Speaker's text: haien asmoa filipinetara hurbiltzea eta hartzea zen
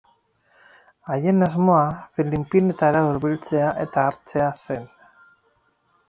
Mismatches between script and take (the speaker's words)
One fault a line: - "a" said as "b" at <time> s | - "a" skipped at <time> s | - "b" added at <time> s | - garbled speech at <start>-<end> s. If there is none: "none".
none